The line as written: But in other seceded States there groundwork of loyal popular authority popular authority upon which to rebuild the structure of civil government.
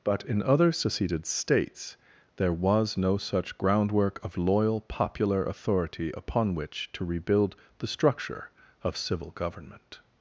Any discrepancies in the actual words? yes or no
yes